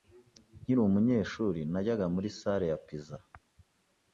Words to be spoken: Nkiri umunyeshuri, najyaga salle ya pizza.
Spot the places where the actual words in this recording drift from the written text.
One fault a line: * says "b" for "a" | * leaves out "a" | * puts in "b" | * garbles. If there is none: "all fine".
* puts in "muri"